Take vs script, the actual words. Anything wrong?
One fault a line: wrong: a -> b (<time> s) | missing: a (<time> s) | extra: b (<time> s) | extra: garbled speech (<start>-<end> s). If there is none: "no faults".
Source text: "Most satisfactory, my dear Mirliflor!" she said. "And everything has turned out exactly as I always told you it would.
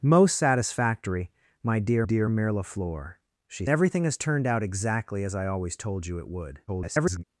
extra: dear (2.0 s)
missing: said And (3.6 s)
extra: garbled speech (6.7-7.2 s)